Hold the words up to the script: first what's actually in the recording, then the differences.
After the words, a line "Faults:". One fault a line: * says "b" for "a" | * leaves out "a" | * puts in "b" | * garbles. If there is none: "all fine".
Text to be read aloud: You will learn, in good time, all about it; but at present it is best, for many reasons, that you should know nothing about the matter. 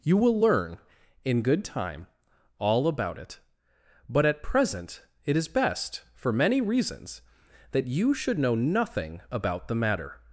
You will learn, in good time, all about it; but at present it is best, for many reasons, that you should know nothing about the matter.
Faults:
all fine